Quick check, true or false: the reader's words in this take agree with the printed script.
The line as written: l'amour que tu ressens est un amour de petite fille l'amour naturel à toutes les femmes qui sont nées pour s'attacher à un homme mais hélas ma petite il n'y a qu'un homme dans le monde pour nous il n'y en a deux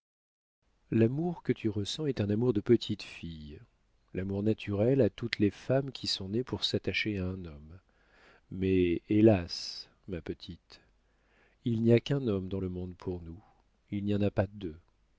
false